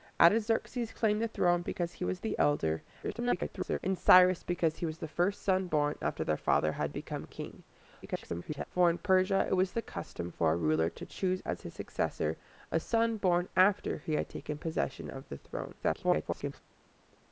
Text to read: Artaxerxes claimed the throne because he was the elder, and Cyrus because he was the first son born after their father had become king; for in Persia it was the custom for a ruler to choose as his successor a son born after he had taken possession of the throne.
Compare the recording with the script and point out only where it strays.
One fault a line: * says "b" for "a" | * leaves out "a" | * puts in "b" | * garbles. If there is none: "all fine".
* garbles
* garbles
* garbles